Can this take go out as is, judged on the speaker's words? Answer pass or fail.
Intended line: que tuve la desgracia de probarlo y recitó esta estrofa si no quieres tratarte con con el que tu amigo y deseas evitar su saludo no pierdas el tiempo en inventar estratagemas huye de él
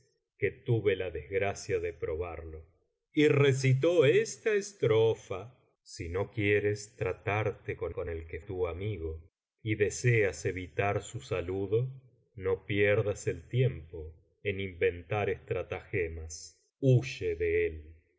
pass